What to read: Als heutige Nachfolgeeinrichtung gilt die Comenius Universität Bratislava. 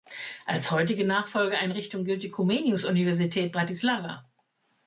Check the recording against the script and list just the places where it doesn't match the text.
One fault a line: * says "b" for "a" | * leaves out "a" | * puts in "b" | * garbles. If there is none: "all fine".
all fine